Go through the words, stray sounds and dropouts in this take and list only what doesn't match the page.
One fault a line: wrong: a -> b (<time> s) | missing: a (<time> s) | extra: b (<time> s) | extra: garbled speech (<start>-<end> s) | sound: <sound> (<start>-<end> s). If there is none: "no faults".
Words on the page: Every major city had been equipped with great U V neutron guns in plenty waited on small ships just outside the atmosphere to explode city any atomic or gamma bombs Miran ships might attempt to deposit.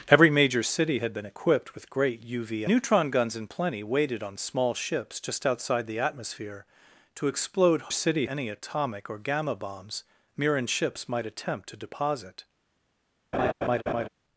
sound: laugh (13.3-14.1 s)